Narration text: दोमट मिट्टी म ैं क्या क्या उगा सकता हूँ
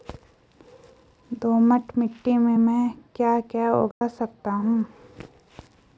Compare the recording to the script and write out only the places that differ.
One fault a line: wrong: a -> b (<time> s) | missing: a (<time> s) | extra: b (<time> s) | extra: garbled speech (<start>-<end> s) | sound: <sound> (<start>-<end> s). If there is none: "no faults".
extra: में (2.4 s)
sound: dropout (3.9-4.0 s)